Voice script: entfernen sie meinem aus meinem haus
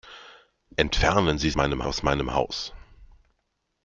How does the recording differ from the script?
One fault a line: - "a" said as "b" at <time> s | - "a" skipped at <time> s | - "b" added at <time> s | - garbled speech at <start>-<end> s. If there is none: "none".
none